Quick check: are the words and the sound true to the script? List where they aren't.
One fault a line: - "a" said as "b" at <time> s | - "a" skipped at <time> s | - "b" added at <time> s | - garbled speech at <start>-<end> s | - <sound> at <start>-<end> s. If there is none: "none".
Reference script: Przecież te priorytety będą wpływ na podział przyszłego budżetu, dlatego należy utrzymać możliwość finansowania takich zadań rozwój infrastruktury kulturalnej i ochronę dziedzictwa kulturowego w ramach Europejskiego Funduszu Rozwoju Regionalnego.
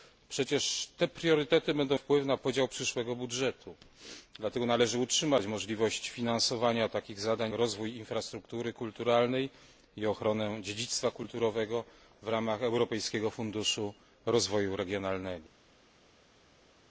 none